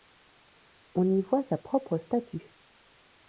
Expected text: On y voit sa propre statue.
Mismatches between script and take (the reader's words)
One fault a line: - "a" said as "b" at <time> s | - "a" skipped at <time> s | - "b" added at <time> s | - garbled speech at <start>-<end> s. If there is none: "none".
none